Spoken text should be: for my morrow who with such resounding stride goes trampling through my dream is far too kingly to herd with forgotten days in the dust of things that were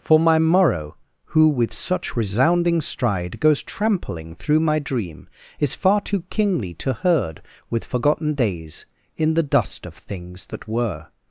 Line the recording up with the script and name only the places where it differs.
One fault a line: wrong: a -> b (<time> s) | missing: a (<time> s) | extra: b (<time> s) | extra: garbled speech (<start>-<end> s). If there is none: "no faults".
no faults